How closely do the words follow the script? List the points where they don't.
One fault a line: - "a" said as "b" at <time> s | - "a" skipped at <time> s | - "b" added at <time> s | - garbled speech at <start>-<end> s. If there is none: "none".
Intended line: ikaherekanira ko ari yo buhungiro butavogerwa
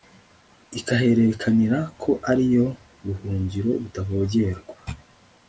none